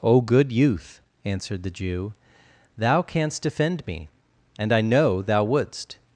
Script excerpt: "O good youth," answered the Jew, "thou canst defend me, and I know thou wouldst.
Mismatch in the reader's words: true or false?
false